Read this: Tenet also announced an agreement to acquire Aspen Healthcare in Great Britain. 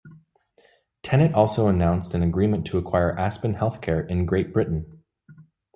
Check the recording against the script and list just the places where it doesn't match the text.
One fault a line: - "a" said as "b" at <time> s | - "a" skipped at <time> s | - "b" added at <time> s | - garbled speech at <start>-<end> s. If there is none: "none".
none